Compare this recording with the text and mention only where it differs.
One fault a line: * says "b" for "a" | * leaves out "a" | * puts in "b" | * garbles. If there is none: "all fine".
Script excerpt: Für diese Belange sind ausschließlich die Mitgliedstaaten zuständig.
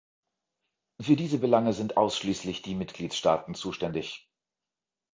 all fine